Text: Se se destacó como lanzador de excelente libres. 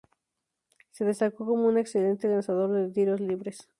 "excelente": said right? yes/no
no